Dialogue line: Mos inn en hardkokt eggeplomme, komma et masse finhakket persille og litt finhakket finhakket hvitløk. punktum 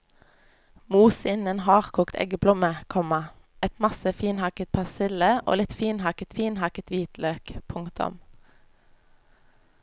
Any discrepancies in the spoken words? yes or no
no